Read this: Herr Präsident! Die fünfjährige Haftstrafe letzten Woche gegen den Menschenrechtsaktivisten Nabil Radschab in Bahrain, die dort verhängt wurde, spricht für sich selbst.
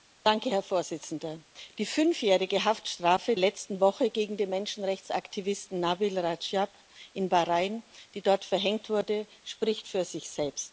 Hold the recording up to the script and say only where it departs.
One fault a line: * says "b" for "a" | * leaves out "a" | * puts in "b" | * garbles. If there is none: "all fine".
all fine